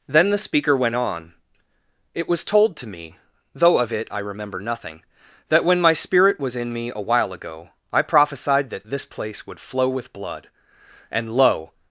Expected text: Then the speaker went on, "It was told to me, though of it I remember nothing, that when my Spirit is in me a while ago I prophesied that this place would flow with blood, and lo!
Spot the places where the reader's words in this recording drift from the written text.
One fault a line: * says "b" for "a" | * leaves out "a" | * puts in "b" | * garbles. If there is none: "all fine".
* says "was" for "is"